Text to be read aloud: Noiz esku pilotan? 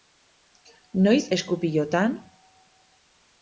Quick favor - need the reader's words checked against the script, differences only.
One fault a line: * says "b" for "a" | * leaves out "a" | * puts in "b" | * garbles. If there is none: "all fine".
all fine